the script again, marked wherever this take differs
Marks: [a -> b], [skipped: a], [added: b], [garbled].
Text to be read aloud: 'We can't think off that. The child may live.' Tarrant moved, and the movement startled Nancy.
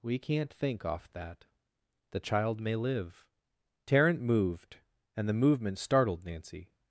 'We can't think off that. The child may live.' Tarrant moved, and the movement startled Nancy.